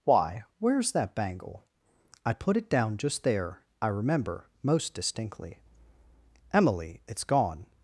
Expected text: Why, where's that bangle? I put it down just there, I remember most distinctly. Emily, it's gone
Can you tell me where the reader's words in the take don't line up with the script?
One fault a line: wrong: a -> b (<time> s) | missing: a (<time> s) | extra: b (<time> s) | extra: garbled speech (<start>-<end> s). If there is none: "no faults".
no faults